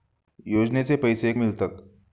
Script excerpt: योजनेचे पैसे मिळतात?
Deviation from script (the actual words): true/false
false